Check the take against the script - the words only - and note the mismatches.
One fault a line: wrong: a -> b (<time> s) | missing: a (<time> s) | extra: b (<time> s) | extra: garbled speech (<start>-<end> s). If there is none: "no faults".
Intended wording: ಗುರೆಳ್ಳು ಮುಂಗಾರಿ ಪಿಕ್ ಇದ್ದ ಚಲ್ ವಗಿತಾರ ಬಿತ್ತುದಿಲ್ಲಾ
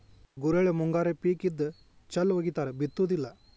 no faults